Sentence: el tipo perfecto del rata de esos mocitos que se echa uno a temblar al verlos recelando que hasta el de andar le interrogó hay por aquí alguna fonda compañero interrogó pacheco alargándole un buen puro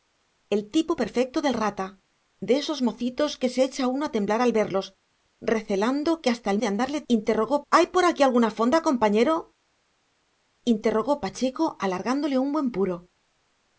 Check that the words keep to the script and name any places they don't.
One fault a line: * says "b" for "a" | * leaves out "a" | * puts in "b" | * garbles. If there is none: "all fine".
all fine